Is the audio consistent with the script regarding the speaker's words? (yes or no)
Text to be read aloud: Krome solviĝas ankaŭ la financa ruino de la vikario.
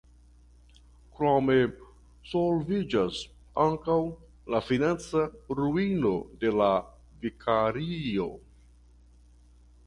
yes